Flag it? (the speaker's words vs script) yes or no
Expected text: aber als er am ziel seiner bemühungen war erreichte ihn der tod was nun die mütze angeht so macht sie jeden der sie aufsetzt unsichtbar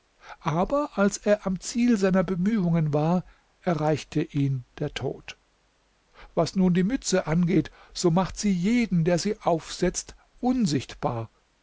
no